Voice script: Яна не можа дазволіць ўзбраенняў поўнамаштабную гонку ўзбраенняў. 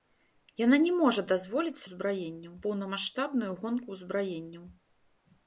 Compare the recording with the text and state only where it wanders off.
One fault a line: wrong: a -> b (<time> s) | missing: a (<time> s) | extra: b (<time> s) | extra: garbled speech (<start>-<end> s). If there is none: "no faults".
no faults